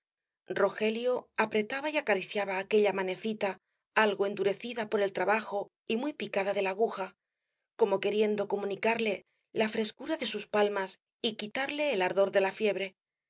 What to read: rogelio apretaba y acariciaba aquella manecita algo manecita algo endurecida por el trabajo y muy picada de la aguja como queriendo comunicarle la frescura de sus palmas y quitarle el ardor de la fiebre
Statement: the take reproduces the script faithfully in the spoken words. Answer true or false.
false